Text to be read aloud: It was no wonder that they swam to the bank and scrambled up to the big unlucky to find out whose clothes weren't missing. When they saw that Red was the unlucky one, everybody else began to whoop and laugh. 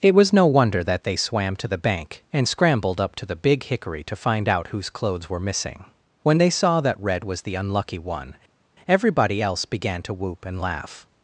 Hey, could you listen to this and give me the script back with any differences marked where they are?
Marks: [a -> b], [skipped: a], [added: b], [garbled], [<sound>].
It was no wonder that they swam to the bank and scrambled up to the big [unlucky -> hickory] to find out whose clothes [weren't -> were] missing. When they saw that Red was the unlucky one, everybody else began to whoop and laugh.